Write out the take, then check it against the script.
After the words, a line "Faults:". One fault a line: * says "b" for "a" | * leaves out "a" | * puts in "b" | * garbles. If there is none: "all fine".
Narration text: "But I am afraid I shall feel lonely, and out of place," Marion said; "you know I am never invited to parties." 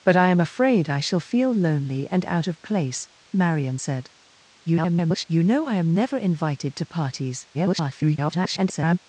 "But I am afraid I shall feel lonely, and out of place," Marion said; [garbled] "you know I am never invited to parties." [garbled]
Faults:
* garbles
* garbles